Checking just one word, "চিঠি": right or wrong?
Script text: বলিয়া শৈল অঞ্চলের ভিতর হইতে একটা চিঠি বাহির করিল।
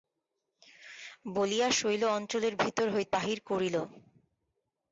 wrong